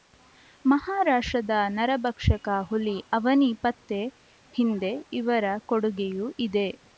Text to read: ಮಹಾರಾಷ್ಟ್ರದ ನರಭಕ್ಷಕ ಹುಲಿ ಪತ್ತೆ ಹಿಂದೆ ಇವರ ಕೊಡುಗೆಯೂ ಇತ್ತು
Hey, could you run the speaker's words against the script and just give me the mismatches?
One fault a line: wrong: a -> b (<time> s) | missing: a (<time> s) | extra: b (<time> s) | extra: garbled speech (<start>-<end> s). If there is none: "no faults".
extra: ಅವನಿ (3.1 s)
wrong: ಇತ್ತು -> ಇದೆ (6.5 s)